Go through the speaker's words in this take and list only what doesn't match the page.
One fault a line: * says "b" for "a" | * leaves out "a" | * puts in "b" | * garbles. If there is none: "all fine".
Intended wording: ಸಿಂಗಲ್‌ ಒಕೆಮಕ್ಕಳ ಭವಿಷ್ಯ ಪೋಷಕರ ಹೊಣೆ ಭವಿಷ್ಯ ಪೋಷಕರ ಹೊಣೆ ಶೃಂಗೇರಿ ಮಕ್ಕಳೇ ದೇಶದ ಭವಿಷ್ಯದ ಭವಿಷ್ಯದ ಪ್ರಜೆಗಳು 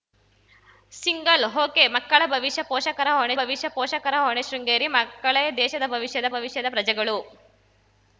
all fine